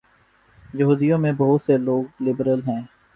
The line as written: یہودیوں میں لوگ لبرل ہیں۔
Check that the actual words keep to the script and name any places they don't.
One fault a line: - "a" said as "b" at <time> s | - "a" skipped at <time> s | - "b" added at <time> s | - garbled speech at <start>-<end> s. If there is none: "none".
- "بہت سے" added at 1.4 s